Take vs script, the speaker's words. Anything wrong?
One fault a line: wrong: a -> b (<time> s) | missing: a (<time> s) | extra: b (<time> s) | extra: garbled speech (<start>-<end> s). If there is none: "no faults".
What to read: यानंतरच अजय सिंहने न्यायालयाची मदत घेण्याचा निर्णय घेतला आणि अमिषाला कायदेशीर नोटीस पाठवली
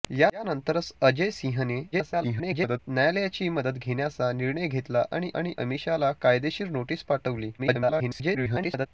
extra: garbled speech (1.9-2.8 s)
extra: आणि (5.3 s)
extra: garbled speech (7.6-8.9 s)